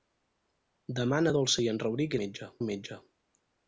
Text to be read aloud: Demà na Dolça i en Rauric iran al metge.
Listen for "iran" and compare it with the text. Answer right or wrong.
wrong